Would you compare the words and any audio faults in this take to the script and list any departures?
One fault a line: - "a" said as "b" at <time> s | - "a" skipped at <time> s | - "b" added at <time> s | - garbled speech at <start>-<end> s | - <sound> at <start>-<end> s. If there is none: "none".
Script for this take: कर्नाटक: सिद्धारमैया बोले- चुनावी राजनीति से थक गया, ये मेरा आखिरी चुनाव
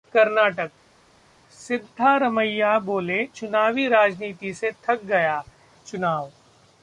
- "ये मेरा आखिरी" skipped at 5.4 s